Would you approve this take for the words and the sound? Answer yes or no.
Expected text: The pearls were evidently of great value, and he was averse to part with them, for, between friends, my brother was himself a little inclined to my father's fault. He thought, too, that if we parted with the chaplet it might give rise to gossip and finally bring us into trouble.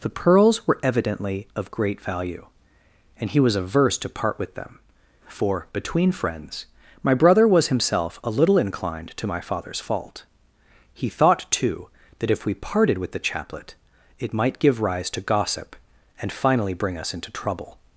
yes